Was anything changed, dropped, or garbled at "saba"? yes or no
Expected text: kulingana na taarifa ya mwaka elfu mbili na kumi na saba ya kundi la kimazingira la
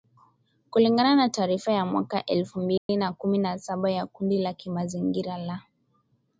no